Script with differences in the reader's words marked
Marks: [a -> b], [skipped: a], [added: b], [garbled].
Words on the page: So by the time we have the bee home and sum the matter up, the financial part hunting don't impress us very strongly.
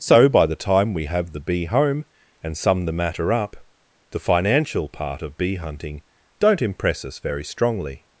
So by the time we have the bee home and sum the matter up, the financial part [added: of bee] hunting don't impress us very strongly.